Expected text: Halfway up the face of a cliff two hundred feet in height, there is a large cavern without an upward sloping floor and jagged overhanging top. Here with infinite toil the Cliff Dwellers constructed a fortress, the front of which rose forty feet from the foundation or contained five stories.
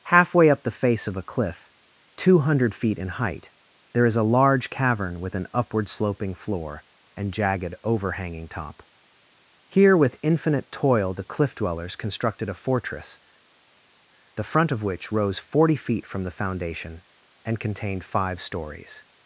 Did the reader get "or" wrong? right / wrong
wrong